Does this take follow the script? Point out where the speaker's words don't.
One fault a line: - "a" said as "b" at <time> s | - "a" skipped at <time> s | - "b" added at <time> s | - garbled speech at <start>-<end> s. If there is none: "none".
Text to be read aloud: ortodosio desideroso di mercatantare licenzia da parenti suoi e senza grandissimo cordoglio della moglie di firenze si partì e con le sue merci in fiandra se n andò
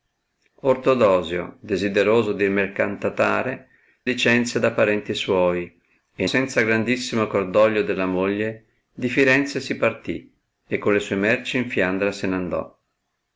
none